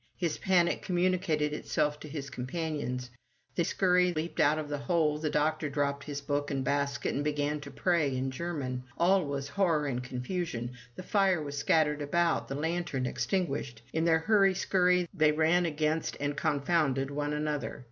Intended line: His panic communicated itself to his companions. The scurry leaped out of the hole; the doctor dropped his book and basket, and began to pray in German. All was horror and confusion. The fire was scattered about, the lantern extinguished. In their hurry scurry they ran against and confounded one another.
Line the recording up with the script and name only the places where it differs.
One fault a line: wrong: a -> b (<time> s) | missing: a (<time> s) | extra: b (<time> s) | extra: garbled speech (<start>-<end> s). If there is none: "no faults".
no faults